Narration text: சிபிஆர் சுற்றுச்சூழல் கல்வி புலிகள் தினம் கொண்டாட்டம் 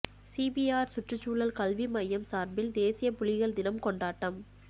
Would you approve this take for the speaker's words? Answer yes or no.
no